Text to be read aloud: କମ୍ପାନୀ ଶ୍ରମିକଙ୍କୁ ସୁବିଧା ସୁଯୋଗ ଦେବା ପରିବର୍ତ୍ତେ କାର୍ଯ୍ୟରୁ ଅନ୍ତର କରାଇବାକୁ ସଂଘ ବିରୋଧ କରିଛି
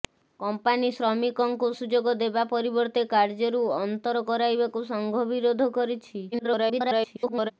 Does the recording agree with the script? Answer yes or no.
no